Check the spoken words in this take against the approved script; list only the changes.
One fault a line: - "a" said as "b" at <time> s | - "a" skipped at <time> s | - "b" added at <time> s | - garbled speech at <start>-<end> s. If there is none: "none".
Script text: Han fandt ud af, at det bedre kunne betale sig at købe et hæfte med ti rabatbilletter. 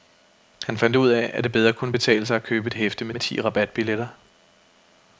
- "med" added at 3.1 s